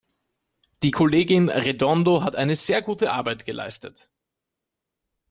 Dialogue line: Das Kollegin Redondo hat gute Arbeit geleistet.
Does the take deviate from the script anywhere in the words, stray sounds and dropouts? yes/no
yes